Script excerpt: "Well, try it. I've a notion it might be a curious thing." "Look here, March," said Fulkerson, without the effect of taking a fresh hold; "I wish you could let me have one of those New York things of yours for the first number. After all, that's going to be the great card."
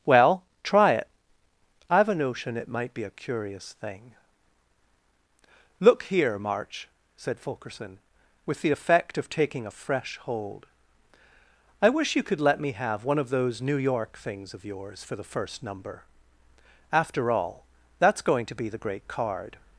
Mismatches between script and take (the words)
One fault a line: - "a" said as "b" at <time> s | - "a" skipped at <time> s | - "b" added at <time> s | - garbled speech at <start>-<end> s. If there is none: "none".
- "without" said as "with" at 8.5 s